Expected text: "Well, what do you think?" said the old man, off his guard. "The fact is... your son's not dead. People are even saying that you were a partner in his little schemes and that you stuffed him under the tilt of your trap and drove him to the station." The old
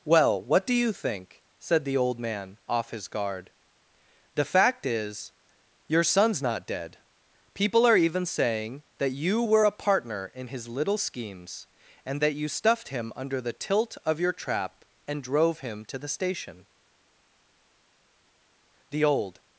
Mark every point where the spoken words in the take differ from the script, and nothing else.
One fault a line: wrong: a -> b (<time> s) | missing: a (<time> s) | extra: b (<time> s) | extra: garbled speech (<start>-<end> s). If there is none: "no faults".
no faults